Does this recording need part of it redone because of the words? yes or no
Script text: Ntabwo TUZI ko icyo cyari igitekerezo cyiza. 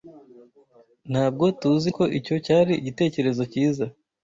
no